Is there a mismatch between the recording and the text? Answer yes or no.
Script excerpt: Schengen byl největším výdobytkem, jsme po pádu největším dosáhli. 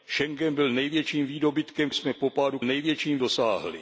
no